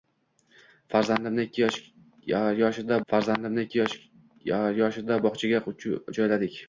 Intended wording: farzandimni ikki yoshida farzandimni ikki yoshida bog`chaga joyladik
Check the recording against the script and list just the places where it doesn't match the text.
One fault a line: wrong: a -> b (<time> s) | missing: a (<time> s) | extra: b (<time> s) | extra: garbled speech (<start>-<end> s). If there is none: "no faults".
no faults